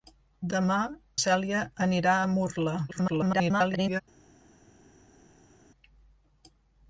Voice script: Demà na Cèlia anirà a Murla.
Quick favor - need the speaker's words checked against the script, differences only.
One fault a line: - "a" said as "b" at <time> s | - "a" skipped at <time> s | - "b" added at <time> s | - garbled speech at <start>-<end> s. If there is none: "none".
- "na" skipped at 0.8 s
- garbled speech at 2.9-4.0 s